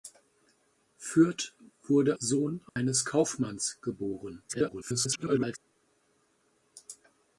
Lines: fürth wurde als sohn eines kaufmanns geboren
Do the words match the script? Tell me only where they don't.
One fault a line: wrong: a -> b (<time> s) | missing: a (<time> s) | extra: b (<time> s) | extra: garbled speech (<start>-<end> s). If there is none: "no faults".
missing: als (2.2 s)
extra: garbled speech (4.5-5.6 s)